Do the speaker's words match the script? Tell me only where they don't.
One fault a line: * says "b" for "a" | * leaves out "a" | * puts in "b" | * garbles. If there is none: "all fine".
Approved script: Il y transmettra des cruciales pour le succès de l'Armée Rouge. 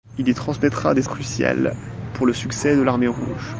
all fine